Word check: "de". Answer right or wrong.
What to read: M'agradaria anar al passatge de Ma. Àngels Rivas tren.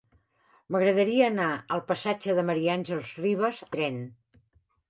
right